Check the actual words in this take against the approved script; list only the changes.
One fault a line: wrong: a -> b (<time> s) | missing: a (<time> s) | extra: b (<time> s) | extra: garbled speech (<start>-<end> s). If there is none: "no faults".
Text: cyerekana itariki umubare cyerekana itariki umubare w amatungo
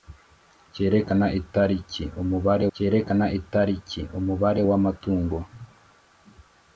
no faults